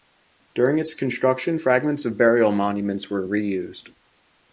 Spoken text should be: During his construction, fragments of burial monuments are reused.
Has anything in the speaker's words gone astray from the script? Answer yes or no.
yes